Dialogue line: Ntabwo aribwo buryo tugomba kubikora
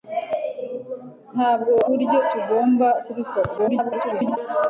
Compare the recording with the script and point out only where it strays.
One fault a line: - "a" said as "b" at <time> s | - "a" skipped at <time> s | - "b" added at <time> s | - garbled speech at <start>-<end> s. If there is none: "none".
- "aribwo" skipped at 1.7 s
- garbled speech at 3.6-4.4 s